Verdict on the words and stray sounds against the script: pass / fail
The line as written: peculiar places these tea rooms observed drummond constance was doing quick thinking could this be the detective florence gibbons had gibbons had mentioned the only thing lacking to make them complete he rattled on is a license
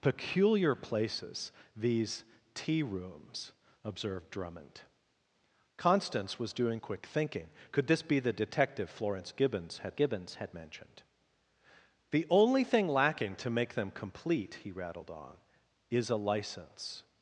pass